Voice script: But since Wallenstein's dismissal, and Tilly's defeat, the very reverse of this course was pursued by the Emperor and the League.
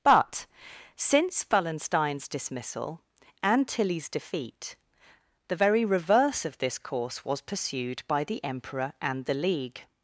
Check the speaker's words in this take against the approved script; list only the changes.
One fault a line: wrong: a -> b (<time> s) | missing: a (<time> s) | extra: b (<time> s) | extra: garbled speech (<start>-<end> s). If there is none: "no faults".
no faults